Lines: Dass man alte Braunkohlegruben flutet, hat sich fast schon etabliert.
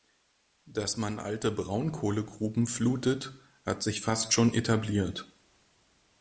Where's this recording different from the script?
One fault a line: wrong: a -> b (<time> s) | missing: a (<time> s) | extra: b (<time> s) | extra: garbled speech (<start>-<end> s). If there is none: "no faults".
no faults